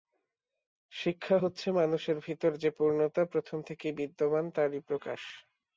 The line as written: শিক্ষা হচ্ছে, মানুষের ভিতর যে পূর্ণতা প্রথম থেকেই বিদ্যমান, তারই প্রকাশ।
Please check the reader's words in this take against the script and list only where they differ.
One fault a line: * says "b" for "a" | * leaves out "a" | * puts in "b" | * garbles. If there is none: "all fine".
all fine